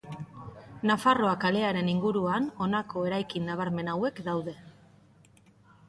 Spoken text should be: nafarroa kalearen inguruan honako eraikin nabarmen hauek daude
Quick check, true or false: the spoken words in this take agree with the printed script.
true